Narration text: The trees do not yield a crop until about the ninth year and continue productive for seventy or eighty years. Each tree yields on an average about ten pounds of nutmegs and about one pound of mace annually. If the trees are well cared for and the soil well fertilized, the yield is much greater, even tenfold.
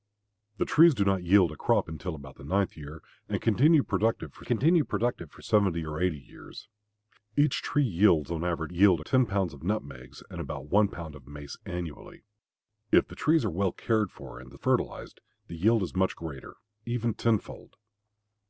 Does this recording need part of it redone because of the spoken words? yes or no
yes